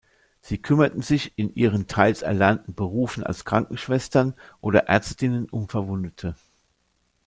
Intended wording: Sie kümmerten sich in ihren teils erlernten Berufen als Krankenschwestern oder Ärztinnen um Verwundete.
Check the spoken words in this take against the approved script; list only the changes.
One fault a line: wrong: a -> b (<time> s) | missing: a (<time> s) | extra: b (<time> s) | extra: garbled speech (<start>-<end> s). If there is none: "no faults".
no faults